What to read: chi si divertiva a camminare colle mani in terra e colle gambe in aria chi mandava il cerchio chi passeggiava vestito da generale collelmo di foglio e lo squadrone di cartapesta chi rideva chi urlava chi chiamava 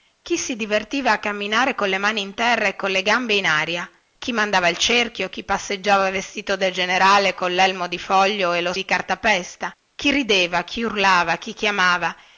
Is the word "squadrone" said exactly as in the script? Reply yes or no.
no